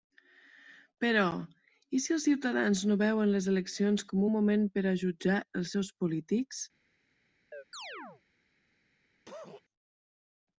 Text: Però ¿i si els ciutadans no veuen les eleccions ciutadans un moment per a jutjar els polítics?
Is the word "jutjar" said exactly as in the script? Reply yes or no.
yes